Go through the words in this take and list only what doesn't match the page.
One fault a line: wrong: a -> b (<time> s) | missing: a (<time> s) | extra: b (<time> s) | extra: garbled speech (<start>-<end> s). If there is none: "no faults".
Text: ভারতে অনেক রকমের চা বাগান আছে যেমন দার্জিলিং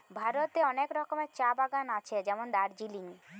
no faults